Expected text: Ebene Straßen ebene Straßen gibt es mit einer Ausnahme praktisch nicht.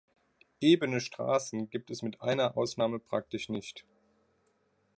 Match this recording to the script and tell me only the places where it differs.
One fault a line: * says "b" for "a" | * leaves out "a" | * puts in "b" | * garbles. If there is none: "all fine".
* leaves out "ebene Straßen"